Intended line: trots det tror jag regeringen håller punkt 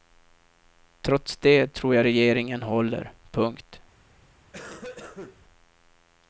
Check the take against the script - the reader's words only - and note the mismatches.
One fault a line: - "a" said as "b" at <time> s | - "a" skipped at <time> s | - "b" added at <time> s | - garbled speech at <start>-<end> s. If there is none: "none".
none